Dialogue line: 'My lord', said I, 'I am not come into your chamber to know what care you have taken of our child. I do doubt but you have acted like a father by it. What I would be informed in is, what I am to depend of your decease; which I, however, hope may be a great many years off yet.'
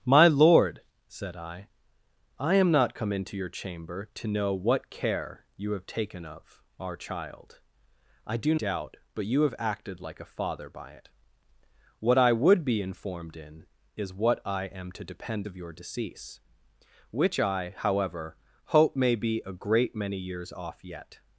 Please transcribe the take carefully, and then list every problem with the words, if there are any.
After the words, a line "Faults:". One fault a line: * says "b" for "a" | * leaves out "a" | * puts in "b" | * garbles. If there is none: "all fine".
'My lord', said I, 'I am not come into your chamber to know what care you have taken of our child. I do doubt but you have acted like a father by it. What I would be informed in is, what I am to depend of your decease; which I, however, hope may be a great many years off yet.'
Faults:
all fine